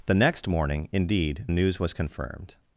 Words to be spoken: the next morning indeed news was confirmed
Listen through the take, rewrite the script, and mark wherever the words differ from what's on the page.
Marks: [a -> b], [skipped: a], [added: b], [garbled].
the next morning indeed news was confirmed